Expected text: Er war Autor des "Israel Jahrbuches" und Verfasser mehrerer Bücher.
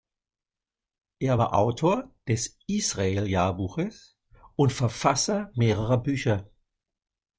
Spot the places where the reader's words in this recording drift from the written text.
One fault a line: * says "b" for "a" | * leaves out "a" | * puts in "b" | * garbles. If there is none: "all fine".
all fine